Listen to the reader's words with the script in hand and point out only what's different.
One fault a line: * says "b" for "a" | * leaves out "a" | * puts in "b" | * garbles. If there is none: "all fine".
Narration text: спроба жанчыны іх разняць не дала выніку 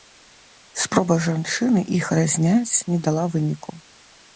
all fine